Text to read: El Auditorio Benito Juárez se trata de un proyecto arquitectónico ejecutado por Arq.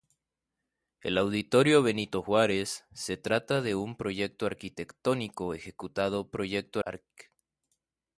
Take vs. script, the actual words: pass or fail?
fail